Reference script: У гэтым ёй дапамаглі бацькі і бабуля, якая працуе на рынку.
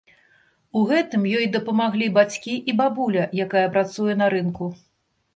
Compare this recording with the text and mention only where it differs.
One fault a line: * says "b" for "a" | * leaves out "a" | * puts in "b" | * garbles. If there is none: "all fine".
all fine